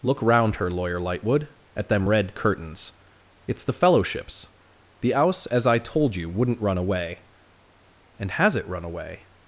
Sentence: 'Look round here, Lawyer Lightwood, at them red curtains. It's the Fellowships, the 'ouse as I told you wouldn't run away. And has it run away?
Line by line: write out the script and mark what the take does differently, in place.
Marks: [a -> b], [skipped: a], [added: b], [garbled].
'Look round [here, -> her] Lawyer Lightwood, at them red curtains. It's the Fellowships, the 'ouse as I told you wouldn't run away. And has it run away?